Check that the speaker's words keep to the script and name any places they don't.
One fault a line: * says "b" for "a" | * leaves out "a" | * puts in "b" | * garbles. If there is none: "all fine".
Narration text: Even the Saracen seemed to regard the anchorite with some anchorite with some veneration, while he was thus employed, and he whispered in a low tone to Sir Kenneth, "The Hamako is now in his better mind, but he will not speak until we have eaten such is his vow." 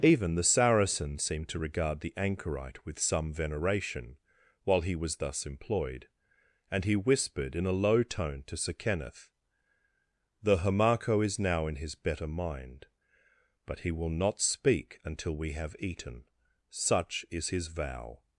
* leaves out "anchorite with some"